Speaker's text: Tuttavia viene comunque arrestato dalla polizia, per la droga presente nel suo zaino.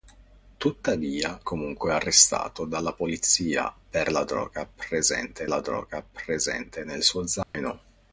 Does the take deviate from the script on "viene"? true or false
true